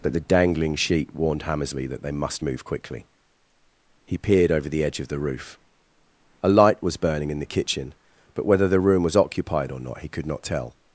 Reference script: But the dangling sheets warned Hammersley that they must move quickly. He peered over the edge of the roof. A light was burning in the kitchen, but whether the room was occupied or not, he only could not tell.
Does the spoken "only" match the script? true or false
false